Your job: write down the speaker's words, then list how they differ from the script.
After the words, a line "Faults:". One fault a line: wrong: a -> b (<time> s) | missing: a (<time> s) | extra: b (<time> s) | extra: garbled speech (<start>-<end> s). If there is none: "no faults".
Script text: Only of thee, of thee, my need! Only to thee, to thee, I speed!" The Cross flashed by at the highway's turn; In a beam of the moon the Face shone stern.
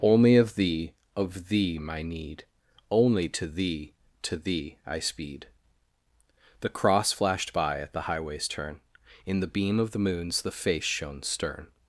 Only of thee, of thee, my need! Only to thee, to thee, I speed!" The Cross flashed by at the highway's turn; In the beam of the moons the Face shone stern.
Faults:
wrong: a -> the (9.4 s)
wrong: moon -> moons (10.0 s)